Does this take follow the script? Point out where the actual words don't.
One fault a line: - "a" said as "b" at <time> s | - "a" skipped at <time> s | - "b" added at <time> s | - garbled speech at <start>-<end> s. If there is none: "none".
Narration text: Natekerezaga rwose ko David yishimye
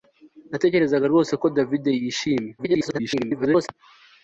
- garbled speech at 2.6-3.7 s